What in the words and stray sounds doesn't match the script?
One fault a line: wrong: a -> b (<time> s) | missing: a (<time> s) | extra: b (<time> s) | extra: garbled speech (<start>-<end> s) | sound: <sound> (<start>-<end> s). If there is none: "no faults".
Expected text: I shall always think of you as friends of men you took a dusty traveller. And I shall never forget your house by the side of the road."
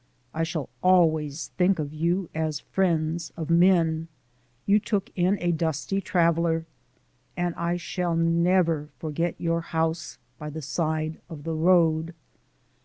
extra: in (5.1 s)